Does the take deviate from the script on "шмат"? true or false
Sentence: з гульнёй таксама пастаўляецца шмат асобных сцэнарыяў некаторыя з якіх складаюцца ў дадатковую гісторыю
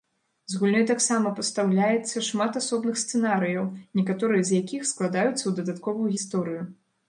false